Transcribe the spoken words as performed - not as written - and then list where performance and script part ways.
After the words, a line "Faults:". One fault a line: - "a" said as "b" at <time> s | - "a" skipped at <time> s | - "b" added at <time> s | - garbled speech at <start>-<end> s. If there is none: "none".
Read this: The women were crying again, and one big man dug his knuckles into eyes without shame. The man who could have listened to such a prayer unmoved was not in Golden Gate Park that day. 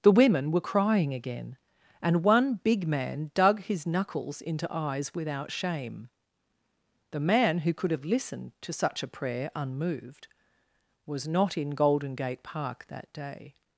The women were crying again, and one big man dug his knuckles into eyes without shame. The man who could have listened to such a prayer unmoved was not in Golden Gate Park that day.
Faults:
none